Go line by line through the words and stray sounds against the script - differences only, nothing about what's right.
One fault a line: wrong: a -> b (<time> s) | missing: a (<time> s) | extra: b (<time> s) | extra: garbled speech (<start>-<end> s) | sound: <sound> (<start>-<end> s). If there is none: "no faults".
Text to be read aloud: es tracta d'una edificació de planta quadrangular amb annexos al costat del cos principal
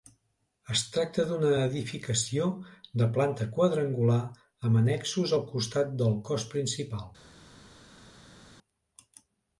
no faults